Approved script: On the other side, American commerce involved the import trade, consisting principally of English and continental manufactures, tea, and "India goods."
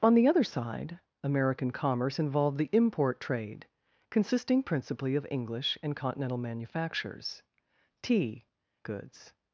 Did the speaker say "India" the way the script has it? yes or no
no